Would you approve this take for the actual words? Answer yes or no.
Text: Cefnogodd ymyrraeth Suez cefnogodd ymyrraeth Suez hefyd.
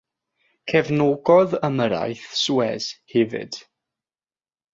no